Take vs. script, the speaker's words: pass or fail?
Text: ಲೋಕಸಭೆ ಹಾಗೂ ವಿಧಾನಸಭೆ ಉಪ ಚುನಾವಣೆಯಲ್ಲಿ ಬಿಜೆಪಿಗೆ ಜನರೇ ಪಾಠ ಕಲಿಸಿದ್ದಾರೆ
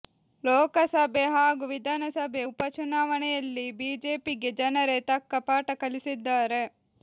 fail